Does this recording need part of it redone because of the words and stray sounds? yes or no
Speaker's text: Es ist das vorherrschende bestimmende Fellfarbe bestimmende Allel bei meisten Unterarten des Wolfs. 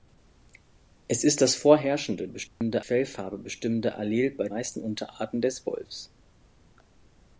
yes